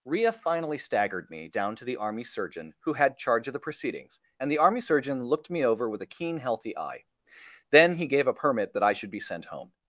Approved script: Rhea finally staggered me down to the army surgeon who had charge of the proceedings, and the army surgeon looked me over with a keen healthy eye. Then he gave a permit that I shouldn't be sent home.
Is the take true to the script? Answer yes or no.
no